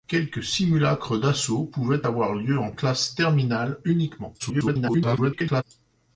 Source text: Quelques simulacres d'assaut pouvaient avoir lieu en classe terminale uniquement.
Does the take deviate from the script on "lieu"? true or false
false